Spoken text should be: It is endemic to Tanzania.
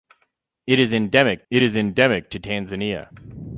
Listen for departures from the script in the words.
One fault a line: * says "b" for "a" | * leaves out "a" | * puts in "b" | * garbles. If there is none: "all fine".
* puts in "it is endemic"